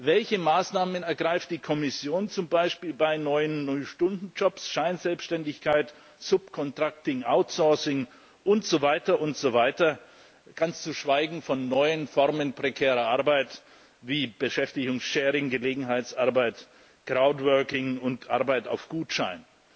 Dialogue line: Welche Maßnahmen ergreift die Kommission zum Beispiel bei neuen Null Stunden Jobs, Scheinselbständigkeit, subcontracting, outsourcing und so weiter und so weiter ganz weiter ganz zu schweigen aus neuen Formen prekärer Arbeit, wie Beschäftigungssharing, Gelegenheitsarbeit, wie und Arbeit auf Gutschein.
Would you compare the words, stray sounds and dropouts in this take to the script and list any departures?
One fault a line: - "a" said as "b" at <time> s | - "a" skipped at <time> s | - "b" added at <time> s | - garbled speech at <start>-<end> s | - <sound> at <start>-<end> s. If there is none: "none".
- "weiter ganz" skipped at 10.8 s
- "aus" said as "von" at 11.4 s
- "wie" said as "crowdworking" at 17.0 s